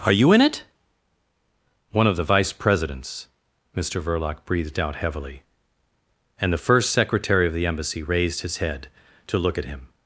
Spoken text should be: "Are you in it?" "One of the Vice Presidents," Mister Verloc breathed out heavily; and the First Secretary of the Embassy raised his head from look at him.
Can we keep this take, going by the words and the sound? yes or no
no